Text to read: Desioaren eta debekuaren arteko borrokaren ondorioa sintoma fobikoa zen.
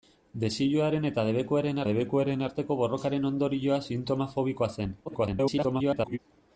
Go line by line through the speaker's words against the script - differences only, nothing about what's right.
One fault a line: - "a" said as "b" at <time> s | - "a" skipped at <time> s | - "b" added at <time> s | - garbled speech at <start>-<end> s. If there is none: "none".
- "debekuaren" added at 1.9 s
- garbled speech at 5.1-6.2 s